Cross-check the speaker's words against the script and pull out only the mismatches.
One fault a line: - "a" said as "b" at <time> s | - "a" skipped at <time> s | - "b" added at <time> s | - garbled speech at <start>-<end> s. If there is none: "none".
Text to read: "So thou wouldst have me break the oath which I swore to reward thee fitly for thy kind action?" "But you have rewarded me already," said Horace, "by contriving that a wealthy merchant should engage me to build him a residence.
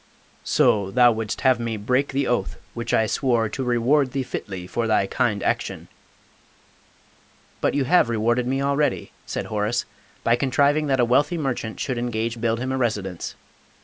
- "me to" skipped at 12.4 s